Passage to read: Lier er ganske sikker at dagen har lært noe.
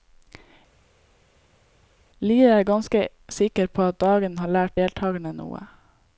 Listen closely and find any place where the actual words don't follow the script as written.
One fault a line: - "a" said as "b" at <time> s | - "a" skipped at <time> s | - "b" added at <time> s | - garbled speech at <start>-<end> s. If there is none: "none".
- "på" added at 3.7 s
- "deltagerne" added at 4.8 s